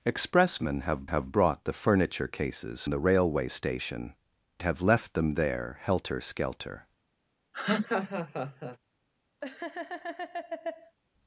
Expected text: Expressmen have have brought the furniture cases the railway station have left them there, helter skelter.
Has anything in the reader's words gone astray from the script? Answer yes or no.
no